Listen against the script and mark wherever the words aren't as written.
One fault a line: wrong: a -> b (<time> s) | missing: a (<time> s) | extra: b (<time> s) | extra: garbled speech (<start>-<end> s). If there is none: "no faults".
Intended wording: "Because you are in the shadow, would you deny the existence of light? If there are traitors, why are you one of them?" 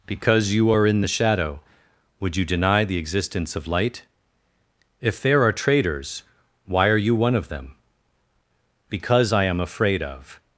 extra: Because I am afraid of (8.9 s)